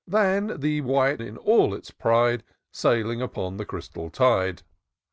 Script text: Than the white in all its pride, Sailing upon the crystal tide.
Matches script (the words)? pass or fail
pass